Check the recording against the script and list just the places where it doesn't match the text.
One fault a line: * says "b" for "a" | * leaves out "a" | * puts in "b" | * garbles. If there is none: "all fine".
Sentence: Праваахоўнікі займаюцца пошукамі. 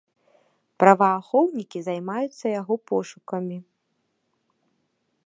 * puts in "яго"